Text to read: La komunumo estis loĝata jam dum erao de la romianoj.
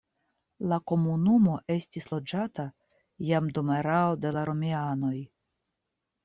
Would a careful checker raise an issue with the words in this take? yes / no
no